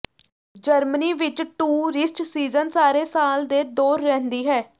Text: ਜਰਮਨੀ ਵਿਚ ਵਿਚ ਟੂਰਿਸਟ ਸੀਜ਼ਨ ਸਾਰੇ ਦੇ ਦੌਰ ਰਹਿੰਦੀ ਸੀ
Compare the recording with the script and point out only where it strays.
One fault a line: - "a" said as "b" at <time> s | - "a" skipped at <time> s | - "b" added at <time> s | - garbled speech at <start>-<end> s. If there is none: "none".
- "ਵਿਚ" skipped at 1.4 s
- "ਸਾਲ" added at 3.1 s
- "ਸੀ" said as "ਹੈ" at 4.5 s